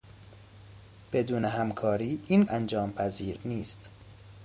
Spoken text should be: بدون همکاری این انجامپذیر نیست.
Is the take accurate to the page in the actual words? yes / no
yes